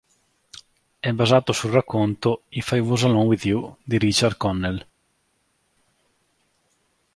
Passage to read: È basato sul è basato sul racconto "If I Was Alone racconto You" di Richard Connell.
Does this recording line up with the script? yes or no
no